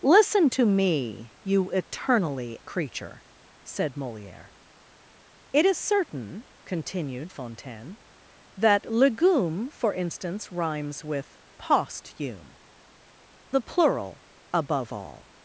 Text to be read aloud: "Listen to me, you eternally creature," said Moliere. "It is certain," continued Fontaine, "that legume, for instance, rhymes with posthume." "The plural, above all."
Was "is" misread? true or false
false